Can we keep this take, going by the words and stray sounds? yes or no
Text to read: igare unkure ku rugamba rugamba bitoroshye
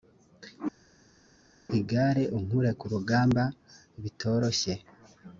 no